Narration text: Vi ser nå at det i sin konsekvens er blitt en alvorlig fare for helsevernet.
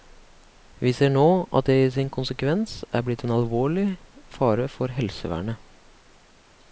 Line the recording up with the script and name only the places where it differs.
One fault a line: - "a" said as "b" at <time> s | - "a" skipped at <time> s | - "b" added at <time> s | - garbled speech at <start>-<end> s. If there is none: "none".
none